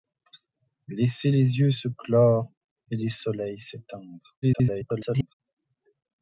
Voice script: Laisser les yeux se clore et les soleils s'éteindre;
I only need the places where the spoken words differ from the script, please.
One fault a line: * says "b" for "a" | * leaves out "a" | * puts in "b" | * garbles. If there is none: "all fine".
* garbles